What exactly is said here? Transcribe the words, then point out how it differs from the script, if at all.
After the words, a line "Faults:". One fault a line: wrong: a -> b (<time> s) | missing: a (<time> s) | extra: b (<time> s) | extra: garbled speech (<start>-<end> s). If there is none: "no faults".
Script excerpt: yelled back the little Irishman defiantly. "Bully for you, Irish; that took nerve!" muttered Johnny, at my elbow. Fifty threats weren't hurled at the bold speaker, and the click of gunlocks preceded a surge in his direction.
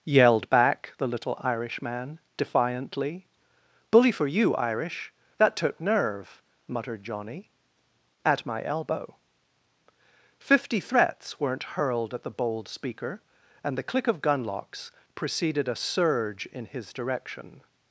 yelled back the little Irishman defiantly. "Bully for you, Irish; that took nerve!" muttered Johnny, at my elbow. Fifty threats weren't hurled at the bold speaker, and the click of gunlocks preceded a surge in his direction.
Faults:
no faults